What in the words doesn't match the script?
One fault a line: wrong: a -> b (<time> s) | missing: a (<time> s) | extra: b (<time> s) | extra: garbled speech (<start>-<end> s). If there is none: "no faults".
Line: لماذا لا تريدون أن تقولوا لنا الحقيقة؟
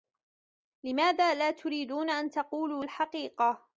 missing: لنا (2.8 s)